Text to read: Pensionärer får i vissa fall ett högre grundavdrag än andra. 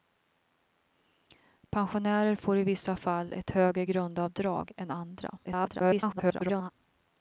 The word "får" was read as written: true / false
true